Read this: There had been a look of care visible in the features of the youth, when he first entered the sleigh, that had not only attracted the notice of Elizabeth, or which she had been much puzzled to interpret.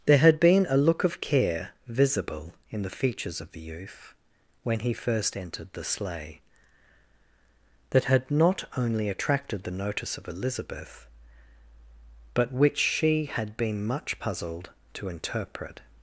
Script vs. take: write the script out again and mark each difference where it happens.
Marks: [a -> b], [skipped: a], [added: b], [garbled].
There had been a look of care visible in the features of the youth, when he first entered the sleigh, that had not only attracted the notice of Elizabeth, [or -> but] which she had been much puzzled to interpret.